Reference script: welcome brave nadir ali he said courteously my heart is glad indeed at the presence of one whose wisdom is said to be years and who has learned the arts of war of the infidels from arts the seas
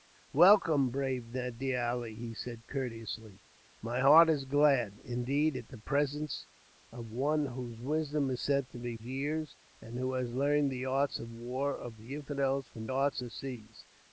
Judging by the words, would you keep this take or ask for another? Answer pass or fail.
pass